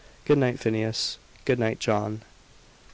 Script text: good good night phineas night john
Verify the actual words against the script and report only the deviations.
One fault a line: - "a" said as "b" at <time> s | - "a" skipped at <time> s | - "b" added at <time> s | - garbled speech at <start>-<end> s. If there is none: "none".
- "good" skipped at 0.4 s
- "good" added at 1.4 s